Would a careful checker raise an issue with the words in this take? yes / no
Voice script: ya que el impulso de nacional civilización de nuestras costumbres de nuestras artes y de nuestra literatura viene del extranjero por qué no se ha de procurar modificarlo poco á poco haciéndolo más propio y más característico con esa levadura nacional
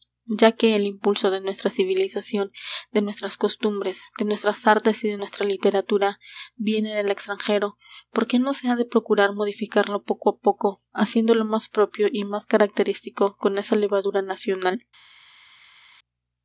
yes